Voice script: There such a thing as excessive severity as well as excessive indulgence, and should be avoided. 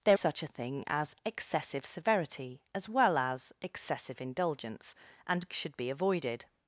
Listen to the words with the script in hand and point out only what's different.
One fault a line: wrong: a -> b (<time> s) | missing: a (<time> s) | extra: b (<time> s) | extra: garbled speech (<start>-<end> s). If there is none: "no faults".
no faults